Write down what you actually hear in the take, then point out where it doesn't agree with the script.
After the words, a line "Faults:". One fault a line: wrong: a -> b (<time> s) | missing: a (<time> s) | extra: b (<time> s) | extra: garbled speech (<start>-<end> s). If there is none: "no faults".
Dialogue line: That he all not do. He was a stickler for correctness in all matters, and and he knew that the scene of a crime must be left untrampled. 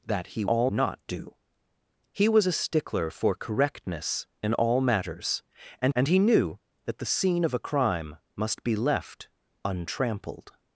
That he all not do. He was a stickler for correctness in all matters, and and he knew that the scene of a crime must be left untrampled.
Faults:
no faults